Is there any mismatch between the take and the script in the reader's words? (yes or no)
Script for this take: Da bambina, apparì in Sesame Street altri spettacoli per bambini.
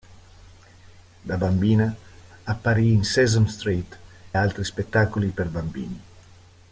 no